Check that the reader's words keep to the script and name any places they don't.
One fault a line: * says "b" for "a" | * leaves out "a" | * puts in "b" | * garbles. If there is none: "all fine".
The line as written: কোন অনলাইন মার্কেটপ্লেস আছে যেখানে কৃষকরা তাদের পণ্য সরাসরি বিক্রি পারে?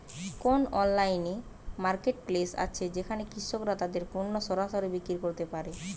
* puts in "করতে"